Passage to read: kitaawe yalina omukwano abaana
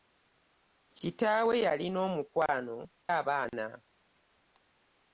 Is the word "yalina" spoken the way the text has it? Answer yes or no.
yes